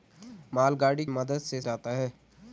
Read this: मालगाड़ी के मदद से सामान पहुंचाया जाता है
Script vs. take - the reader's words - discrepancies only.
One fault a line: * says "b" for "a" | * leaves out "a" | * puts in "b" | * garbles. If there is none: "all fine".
* leaves out "के"
* leaves out "सामान पहुंचाया"